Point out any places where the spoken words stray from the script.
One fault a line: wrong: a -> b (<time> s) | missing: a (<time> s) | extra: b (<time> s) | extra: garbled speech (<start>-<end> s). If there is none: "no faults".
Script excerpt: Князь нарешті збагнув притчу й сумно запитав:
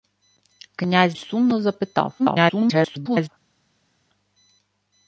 missing: нарешті збагнув притчу (1.2 s)
extra: garbled speech (2.2-3.3 s)